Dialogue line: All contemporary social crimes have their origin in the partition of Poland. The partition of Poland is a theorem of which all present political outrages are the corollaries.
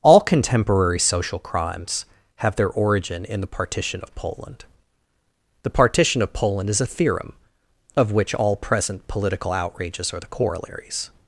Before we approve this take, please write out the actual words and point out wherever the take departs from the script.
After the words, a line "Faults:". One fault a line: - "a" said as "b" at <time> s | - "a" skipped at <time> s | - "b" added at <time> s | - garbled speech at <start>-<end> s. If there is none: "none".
All contemporary social crimes have their origin in the partition of Poland. The partition of Poland is a theorem of which all present political outrages are the corollaries.
Faults:
none